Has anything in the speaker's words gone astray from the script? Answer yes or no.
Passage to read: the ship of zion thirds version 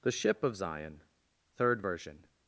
yes